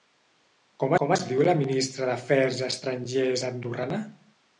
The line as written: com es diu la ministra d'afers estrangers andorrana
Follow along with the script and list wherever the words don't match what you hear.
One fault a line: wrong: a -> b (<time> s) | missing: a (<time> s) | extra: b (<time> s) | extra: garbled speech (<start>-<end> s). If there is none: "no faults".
extra: com (1.0 s)